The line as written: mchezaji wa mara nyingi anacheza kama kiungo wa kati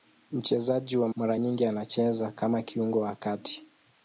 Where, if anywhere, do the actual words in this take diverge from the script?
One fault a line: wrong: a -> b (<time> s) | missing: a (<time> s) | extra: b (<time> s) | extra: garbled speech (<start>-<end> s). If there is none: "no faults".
no faults